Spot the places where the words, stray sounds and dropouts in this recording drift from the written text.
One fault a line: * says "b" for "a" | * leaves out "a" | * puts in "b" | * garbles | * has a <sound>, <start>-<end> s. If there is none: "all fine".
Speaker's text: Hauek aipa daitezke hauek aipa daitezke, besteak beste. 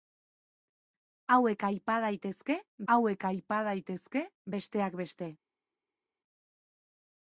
all fine